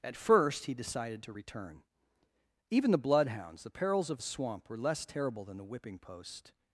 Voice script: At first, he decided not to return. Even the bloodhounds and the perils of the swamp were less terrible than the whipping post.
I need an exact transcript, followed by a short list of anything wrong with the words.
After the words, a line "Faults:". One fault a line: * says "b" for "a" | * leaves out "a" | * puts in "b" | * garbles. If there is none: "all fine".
At first, he decided to return. Even the bloodhounds the perils of the swamp were less terrible than the whipping post.
Faults:
* leaves out "not"
* leaves out "and"